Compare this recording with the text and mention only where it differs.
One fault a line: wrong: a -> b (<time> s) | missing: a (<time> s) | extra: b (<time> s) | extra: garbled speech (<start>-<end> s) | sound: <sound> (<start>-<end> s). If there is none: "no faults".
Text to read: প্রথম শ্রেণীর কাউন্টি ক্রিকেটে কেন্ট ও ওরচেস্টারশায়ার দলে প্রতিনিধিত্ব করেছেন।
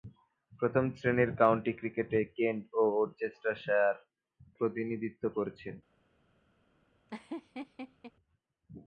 missing: দলে (4.0 s)
sound: laugh (7.1-8.1 s)